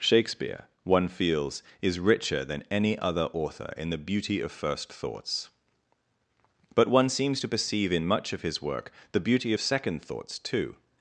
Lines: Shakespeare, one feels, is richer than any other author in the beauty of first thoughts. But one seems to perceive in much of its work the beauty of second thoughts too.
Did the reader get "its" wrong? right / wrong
wrong